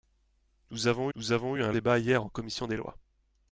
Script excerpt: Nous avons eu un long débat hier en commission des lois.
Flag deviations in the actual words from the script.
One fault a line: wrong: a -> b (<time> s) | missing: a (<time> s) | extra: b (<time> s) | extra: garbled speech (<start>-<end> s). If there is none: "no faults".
extra: nous avons (1.2 s)
missing: long (1.7 s)